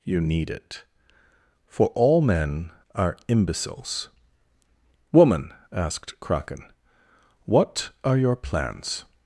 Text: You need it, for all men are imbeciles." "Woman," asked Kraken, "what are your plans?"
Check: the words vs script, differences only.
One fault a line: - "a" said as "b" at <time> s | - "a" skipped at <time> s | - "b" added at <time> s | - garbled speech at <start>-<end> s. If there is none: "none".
none